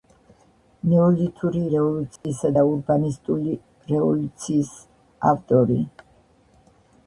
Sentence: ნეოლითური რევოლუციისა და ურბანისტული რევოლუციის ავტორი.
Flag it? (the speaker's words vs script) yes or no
no